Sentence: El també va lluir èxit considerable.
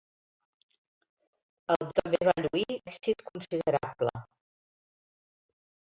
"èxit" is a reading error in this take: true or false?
false